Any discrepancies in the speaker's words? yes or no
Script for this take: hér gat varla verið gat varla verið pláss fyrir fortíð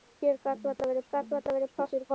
no